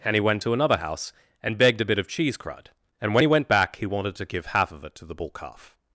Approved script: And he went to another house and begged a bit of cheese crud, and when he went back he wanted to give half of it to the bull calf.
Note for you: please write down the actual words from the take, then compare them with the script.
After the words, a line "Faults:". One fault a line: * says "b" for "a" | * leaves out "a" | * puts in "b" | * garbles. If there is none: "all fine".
And he went to another house and begged a bit of cheese crud, and when he went back he wanted to give half of it to the bull calf.
Faults:
all fine